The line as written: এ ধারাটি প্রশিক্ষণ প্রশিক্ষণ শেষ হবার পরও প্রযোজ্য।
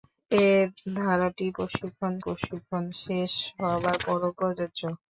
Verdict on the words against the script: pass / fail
pass